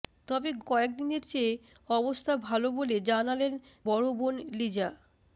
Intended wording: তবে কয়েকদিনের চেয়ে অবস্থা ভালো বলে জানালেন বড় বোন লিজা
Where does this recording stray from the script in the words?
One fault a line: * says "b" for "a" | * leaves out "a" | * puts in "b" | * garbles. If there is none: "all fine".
all fine